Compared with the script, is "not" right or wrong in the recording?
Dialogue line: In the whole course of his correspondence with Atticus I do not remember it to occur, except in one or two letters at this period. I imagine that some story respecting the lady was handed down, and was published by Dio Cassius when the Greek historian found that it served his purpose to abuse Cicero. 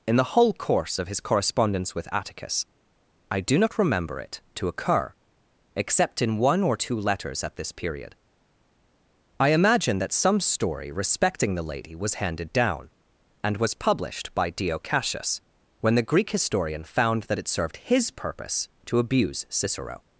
right